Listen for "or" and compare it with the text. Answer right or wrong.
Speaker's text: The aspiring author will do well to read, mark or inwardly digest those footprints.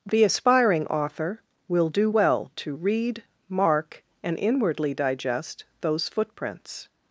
wrong